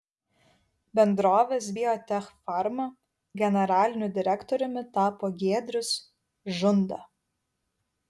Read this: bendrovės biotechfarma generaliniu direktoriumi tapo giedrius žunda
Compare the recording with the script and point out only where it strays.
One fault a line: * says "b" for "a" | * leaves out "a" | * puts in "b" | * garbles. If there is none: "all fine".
all fine